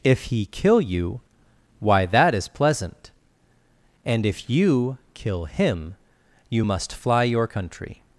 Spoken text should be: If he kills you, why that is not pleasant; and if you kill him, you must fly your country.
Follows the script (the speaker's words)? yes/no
no